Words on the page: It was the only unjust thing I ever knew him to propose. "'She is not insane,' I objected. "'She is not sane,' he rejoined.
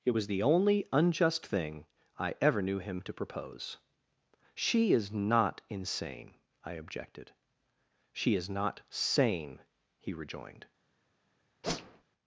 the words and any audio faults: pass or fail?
fail